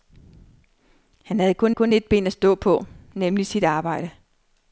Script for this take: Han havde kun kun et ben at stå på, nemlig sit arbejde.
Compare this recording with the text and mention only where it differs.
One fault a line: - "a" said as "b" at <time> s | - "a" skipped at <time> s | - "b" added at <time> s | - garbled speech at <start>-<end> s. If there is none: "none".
none